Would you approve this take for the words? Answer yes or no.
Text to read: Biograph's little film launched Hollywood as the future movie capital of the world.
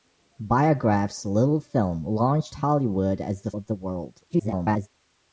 no